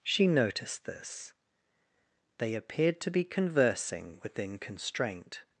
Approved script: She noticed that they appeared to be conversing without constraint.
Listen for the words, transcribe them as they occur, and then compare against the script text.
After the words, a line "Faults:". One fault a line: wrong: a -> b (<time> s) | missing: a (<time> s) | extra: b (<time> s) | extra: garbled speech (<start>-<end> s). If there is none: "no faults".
She noticed this they appeared to be conversing within constraint.
Faults:
wrong: that -> this (0.8 s)
wrong: without -> within (4.2 s)